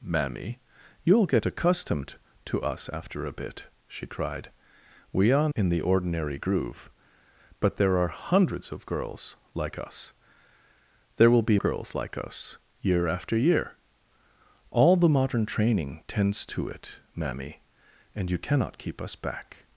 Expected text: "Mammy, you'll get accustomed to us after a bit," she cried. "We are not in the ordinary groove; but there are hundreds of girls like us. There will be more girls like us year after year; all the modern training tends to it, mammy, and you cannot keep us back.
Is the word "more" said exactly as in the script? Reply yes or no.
no